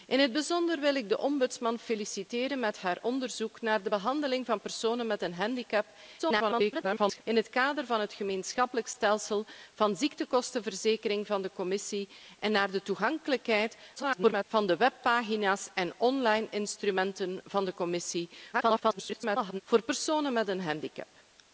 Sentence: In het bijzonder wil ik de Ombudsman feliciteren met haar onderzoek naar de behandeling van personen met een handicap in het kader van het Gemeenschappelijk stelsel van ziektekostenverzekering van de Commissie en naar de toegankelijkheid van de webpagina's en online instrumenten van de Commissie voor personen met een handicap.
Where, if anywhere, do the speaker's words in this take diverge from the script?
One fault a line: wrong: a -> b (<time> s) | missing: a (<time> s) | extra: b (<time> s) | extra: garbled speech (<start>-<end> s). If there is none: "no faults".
extra: garbled speech (6.2-7.2 s)
extra: garbled speech (14.0-14.4 s)
extra: garbled speech (18.5-19.6 s)